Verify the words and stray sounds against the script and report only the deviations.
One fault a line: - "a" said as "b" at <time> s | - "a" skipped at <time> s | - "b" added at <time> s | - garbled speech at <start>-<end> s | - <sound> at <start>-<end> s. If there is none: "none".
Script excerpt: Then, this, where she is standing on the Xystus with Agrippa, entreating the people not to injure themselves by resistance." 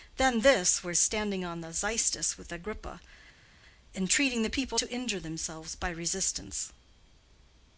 - "she" skipped at 0.9 s
- "not" skipped at 4.8 s